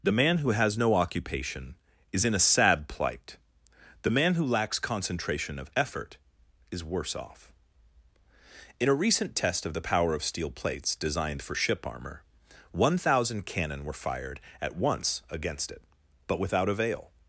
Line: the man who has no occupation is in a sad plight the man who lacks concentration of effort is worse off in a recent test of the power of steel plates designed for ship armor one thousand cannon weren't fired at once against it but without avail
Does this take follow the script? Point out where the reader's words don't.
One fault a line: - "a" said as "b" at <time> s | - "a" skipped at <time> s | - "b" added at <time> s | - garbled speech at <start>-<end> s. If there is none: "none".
- "weren't" said as "were" at 13.8 s